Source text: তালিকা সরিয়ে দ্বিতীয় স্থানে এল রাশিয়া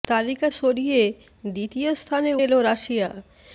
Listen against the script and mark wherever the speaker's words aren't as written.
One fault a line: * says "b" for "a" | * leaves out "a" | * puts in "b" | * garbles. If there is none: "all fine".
all fine